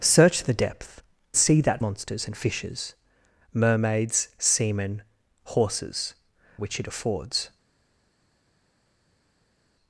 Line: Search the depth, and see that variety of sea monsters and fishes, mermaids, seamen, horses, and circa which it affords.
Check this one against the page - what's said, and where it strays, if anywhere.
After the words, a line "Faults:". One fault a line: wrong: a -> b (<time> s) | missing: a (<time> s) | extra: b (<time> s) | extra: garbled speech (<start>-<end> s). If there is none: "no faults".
Search the depth, see that monsters and fishes, mermaids, seamen, horses, which it affords.
Faults:
missing: and (1.0 s)
missing: variety of sea (1.8 s)
missing: and circa (6.2 s)